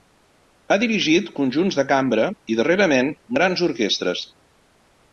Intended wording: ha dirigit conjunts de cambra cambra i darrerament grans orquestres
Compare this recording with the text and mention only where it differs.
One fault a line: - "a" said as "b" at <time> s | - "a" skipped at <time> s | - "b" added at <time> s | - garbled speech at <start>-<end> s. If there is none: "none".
- "cambra" skipped at 2.3 s